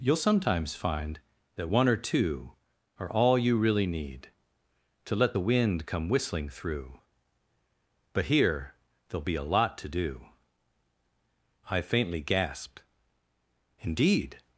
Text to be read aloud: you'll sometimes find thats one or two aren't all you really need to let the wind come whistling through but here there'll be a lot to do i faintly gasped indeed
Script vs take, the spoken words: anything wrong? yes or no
yes